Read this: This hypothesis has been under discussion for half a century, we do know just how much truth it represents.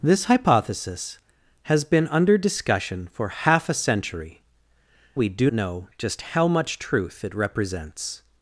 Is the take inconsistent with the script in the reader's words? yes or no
no